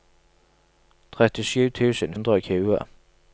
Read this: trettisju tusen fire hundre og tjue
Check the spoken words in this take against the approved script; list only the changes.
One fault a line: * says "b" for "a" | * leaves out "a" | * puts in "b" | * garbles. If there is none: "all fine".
* leaves out "fire"